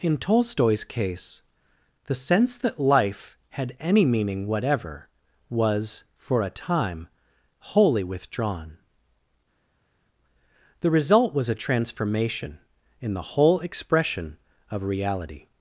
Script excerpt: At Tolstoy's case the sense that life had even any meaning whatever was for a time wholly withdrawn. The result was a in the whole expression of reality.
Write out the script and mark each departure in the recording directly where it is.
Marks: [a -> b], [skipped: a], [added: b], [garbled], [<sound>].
[At -> In] Tolstoy's case the sense that life had [skipped: even] any meaning whatever was for a time wholly withdrawn. The result was a [added: transformation] in the whole expression of reality.